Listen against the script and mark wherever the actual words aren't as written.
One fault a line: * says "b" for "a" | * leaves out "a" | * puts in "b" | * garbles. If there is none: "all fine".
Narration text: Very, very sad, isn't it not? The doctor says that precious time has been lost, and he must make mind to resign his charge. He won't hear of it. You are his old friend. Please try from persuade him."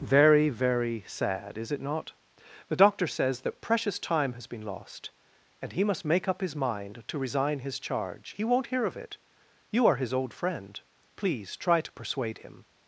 * says "is" for "isn't"
* puts in "up his"
* says "to" for "from"